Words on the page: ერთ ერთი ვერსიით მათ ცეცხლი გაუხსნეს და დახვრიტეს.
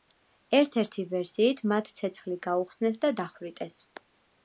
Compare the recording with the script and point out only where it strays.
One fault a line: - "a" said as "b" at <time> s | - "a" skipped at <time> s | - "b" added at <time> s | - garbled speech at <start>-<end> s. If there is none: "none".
none